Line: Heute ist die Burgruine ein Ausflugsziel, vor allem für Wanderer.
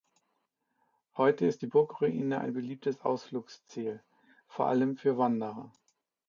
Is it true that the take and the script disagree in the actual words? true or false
true